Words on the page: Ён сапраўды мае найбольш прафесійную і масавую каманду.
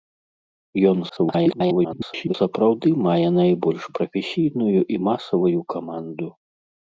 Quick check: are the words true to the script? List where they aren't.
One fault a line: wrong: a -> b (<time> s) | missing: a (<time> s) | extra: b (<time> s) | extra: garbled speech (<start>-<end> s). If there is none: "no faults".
extra: garbled speech (1.1-2.3 s)